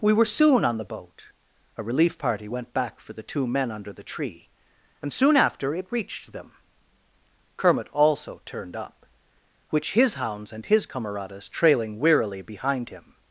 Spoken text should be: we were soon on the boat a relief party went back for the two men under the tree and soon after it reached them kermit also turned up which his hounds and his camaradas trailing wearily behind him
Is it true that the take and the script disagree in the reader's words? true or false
false